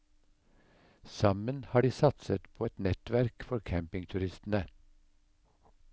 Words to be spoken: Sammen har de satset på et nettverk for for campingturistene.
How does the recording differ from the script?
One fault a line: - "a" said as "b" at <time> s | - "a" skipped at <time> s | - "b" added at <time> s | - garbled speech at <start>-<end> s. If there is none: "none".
- "for" skipped at 3.6 s